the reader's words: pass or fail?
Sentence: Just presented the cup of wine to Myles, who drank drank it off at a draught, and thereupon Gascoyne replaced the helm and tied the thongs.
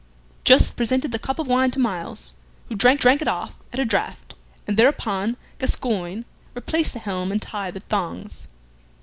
pass